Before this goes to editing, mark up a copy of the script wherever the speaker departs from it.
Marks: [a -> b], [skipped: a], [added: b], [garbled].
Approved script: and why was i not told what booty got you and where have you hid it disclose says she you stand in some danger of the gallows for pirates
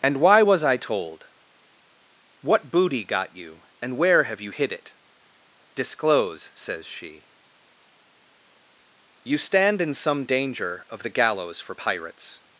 and why was i [skipped: not] told what booty got you and where have you hid it disclose says she you stand in some danger of the gallows for pirates